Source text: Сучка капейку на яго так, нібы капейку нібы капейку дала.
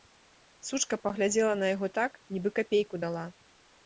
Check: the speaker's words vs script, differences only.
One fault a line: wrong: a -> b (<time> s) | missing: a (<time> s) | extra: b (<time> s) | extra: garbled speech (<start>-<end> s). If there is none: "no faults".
wrong: капейку -> паглядзела (1.0 s)
missing: нібы капейку (3.0 s)